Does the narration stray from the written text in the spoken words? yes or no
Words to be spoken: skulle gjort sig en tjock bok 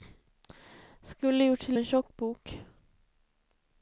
no